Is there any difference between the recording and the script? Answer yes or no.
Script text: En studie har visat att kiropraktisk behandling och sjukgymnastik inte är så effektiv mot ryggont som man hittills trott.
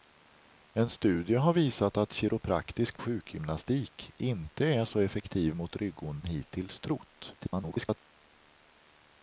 yes